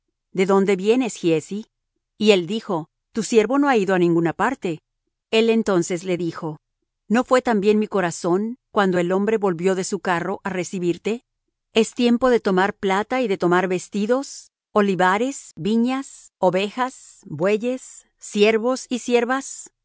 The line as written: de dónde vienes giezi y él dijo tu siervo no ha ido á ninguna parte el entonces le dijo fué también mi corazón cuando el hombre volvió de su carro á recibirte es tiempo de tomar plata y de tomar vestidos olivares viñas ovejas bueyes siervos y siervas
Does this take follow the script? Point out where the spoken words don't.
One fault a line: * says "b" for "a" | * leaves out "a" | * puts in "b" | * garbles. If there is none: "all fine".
* puts in "no"